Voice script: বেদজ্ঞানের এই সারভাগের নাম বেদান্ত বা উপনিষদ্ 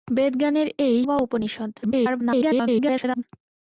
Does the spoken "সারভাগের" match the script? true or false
false